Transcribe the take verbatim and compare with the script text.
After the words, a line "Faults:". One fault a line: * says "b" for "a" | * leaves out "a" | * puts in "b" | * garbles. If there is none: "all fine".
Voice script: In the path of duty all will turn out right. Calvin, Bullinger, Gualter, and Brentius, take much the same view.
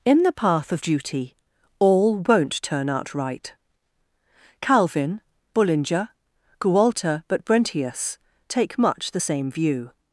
In the path of duty all won't turn out right. Calvin, Bullinger, Gualter, but Brentius, take much the same view.
Faults:
* says "won't" for "will"
* says "but" for "and"